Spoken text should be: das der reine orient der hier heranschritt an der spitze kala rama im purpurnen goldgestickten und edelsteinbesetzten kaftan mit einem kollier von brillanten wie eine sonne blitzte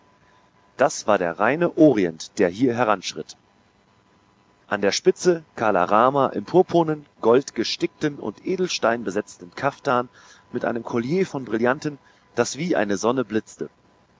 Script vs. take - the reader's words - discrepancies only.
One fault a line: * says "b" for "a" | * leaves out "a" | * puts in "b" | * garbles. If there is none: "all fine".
* puts in "war"
* puts in "das"